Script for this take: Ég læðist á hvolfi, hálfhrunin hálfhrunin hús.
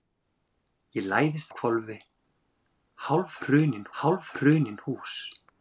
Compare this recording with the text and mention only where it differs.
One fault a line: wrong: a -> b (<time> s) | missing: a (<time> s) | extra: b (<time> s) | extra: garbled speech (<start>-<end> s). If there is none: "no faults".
no faults